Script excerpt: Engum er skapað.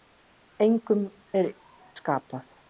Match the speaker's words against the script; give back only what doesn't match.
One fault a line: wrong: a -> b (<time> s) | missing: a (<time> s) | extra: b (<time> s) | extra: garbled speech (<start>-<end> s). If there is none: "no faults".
no faults